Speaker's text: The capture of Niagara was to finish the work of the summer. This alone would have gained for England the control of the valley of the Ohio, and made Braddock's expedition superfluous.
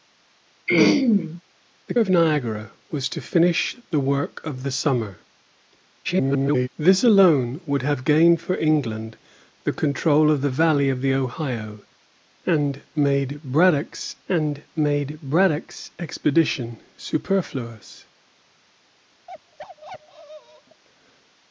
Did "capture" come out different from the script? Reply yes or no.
yes